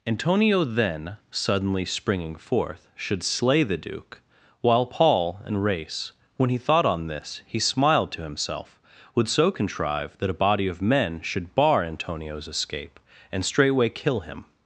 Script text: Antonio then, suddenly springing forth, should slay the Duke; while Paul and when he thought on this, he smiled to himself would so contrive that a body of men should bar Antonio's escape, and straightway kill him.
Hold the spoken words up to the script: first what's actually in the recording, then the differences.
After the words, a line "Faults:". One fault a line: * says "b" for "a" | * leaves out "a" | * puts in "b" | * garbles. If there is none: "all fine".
Antonio then, suddenly springing forth, should slay the Duke; while Paul and race when he thought on this, he smiled to himself would so contrive that a body of men should bar Antonio's escape, and straightway kill him.
Faults:
* puts in "race"